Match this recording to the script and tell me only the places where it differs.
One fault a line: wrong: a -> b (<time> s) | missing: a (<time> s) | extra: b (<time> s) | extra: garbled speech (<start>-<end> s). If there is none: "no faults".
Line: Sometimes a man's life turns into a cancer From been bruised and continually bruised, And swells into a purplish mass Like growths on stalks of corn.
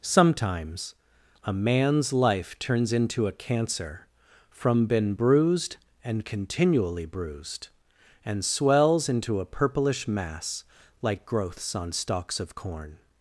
no faults